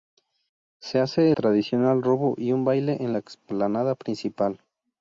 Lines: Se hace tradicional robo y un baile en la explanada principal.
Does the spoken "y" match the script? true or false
true